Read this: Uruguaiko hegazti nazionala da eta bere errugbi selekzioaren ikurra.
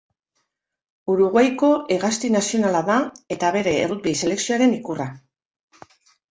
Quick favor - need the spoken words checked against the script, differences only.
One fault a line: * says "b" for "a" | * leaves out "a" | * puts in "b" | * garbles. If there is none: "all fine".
all fine